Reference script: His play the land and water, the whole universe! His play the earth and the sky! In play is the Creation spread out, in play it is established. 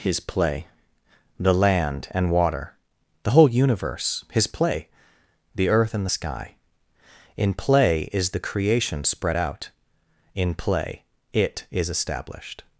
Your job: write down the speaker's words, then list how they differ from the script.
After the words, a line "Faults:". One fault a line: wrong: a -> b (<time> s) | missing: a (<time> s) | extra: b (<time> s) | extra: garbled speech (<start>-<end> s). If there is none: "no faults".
His play the land and water, the whole universe! His play the earth and the sky! In play is the Creation spread out, in play it is established.
Faults:
no faults